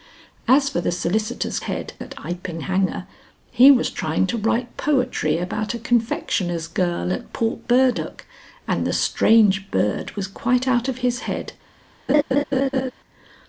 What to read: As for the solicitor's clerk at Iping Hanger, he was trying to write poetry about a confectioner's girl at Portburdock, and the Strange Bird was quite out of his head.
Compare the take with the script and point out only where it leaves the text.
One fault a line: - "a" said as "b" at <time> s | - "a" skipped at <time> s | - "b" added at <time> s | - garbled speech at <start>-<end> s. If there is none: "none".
- "clerk" said as "head" at 1.6 s